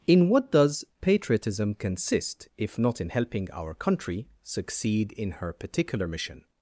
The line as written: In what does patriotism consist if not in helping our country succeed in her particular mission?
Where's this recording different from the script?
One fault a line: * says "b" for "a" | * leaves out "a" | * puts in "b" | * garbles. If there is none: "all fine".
all fine